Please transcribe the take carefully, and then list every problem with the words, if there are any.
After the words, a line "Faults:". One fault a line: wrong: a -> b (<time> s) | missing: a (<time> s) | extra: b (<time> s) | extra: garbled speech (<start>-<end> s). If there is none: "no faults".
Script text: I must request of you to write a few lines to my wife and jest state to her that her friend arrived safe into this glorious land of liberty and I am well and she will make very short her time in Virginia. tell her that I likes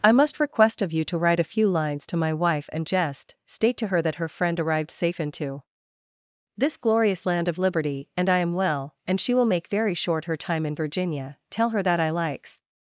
I must request of you to write a few lines to my wife and jest state to her that her friend arrived safe into this glorious land of liberty and I am well and she will make very short her time in Virginia. tell her that I likes
Faults:
no faults